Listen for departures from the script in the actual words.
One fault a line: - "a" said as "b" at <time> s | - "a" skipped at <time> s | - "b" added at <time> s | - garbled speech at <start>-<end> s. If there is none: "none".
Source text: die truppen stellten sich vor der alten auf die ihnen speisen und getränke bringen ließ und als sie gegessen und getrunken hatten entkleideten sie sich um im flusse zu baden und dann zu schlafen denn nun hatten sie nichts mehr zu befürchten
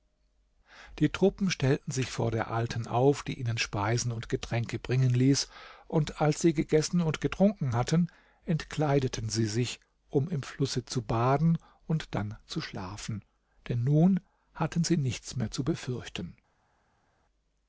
none